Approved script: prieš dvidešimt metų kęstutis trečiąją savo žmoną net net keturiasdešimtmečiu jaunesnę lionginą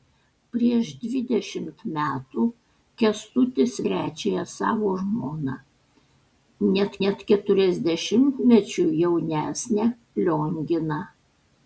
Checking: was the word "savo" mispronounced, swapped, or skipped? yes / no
no